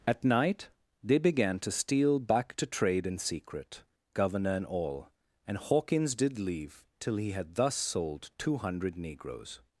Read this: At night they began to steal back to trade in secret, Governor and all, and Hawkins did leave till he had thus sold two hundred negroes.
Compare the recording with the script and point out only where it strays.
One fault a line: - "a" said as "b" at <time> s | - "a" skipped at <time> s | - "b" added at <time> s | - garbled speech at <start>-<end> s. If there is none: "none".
none